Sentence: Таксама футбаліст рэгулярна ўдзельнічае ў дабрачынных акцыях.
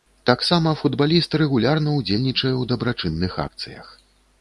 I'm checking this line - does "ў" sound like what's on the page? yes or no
yes